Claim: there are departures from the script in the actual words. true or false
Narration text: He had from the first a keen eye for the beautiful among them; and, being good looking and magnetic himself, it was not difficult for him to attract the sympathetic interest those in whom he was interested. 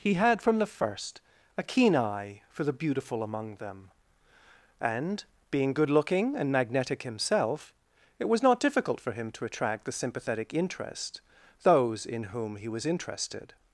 false